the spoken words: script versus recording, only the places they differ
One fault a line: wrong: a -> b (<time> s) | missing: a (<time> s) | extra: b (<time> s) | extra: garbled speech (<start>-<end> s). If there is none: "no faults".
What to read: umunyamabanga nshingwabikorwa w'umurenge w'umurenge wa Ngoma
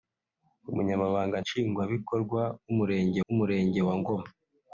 no faults